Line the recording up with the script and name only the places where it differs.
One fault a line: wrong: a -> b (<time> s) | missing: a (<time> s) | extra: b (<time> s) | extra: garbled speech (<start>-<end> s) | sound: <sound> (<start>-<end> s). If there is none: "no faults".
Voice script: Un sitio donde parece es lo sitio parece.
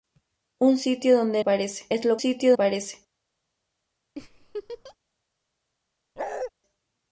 sound: laugh (4.2-5.0 s)
sound: bark (6.2-6.5 s)